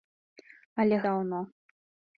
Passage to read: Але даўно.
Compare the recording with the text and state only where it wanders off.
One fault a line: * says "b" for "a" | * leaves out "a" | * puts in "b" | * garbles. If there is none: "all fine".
all fine